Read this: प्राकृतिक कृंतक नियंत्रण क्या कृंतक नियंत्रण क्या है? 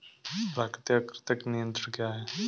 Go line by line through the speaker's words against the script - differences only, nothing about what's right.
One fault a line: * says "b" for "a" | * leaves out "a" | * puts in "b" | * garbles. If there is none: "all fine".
* leaves out "कृंतक नियंत्रण क्या"